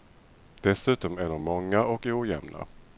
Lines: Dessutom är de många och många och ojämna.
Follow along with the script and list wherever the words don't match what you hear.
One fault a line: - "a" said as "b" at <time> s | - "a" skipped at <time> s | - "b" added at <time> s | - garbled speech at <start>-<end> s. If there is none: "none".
- "många och" skipped at 2.1 s